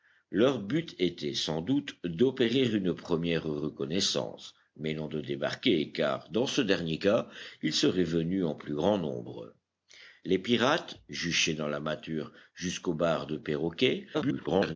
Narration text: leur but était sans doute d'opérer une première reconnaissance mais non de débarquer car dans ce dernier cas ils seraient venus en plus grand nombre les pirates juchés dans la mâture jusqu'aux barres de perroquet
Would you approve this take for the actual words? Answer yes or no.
no